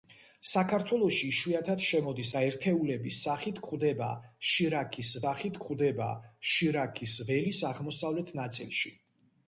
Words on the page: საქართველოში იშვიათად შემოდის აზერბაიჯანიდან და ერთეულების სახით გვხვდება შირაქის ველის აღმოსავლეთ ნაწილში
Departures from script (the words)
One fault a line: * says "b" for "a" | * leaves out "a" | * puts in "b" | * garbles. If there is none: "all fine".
* leaves out "აზერბაიჯანიდან"
* puts in "სახით გვხვდება შირაქის"